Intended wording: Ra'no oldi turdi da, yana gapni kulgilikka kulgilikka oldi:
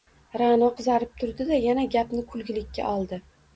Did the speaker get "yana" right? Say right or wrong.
right